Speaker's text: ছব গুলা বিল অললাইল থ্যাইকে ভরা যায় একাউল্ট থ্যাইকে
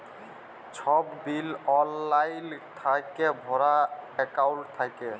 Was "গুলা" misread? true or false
true